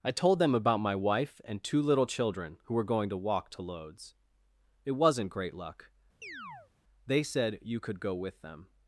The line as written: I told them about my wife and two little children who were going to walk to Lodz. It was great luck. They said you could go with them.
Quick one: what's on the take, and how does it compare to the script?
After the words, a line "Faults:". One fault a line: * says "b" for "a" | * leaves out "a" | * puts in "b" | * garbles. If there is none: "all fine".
I told them about my wife and two little children who were going to walk to Lodz. It wasn't great luck. They said you could go with them.
Faults:
* says "wasn't" for "was"